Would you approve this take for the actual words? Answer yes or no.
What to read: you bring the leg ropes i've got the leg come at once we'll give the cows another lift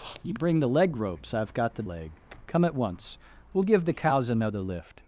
yes